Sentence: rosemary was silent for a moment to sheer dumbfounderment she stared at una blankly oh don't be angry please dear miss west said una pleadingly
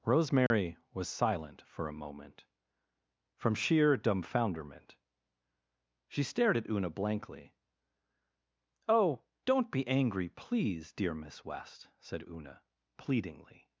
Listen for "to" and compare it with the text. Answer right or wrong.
wrong